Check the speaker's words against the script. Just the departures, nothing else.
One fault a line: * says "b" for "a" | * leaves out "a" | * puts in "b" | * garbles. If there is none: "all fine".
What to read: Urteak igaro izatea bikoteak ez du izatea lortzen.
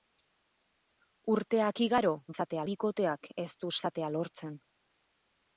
all fine